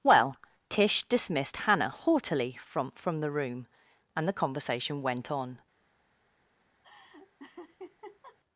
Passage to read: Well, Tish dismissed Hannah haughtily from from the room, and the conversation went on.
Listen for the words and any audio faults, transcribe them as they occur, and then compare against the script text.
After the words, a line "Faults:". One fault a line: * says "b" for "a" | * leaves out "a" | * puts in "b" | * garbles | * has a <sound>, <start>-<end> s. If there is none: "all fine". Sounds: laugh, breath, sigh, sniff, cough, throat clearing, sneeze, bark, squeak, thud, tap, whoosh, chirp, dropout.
Well, Tish dismissed Hannah haughtily from from the room, and the conversation went on.
Faults:
* has a laugh, 6.8-8.4 s